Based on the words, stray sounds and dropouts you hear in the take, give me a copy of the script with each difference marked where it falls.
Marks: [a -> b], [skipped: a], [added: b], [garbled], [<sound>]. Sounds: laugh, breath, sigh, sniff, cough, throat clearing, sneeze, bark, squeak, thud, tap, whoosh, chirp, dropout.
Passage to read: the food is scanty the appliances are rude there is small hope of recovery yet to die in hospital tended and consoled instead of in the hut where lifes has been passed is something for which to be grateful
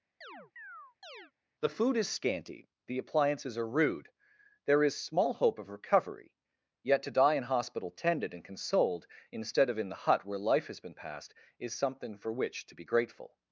[chirp] the food is scanty the appliances are rude there is small hope of recovery yet to die in hospital tended and consoled instead of in the hut where [lifes -> life] has been passed is something for which to be grateful